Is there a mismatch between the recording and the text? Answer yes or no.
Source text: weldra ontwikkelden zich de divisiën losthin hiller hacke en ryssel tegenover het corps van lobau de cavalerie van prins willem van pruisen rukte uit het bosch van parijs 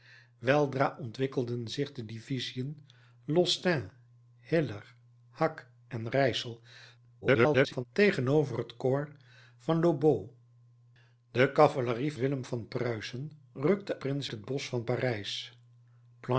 yes